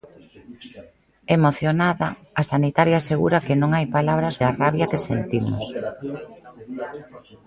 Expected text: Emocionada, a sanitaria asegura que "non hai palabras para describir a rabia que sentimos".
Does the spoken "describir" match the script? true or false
false